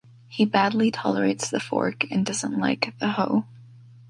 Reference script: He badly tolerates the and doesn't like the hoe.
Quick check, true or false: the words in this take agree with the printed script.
false